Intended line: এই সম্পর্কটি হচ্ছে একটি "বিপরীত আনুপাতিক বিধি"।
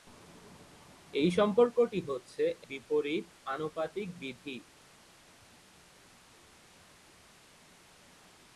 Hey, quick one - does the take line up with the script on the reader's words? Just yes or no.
no